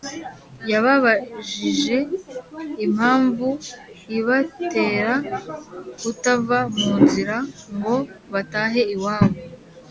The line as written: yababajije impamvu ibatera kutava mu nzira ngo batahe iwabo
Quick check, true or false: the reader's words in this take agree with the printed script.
true